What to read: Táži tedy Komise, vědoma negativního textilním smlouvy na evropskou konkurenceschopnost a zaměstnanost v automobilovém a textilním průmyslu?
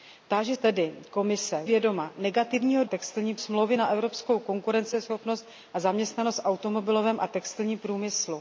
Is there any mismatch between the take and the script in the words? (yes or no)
no